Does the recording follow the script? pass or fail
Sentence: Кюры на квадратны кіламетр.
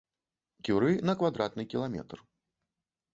pass